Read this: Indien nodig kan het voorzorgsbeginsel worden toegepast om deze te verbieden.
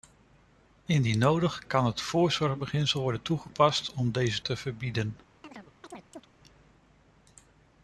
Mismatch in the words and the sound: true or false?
true